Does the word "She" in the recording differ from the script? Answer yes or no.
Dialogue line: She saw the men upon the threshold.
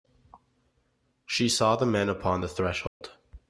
no